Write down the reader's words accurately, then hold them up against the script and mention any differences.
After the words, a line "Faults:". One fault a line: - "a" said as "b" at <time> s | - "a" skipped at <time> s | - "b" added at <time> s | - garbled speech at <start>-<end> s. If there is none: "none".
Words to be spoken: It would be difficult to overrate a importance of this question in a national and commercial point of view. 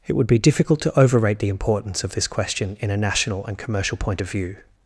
It would be difficult to overrate the importance of this question in a national and commercial point of view.
Faults:
- "a" said as "the" at 1.4 s